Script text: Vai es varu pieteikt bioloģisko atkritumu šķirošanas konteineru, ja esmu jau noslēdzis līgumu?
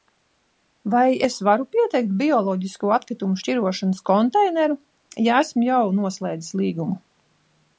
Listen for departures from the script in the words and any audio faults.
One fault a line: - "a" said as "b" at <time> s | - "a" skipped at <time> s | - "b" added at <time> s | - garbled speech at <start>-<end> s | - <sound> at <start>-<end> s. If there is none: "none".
none